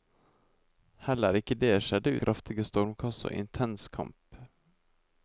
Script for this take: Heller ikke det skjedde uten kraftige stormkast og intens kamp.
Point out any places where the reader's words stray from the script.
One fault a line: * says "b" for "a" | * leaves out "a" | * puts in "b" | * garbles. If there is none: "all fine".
* leaves out "uten"